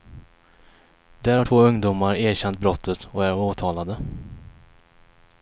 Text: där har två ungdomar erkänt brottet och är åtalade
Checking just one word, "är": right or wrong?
right